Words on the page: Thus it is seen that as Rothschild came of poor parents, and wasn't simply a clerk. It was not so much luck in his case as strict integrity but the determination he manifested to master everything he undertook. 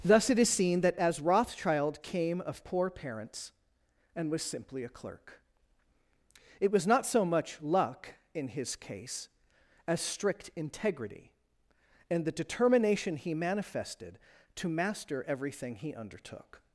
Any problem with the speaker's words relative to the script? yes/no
yes